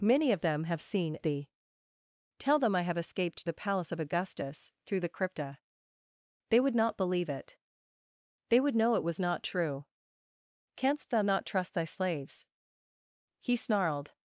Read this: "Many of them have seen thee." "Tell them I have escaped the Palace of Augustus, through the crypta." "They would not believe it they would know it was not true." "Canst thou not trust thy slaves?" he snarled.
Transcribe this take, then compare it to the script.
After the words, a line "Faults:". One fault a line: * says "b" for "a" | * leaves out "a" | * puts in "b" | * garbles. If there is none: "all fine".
"Many of them have seen thee." "Tell them I have escaped the Palace of Augustus, through the crypta." "They would not believe it they would know it was not true." "Canst thou not trust thy slaves?" he snarled.
Faults:
all fine